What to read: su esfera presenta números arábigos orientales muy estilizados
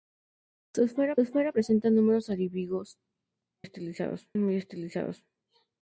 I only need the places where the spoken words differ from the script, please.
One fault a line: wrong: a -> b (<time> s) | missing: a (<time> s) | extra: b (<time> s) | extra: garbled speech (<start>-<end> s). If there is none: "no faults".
extra: esfera (1.2 s)
wrong: orientales -> estilizados (3.6 s)